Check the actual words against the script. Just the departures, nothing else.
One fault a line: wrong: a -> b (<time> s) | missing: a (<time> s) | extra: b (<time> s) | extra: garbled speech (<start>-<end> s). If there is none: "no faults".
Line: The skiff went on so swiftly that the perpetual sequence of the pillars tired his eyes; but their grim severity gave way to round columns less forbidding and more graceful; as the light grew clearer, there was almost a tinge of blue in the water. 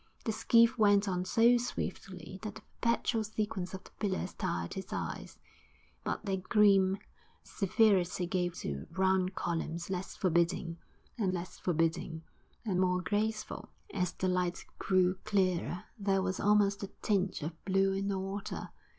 missing: way (8.6 s)
extra: less forbidding and (11.3 s)